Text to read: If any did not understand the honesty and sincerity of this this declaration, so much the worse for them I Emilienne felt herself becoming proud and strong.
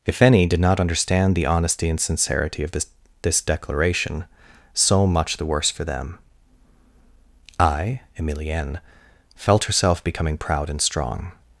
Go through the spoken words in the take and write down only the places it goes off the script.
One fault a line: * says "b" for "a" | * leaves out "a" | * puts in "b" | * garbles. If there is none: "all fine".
all fine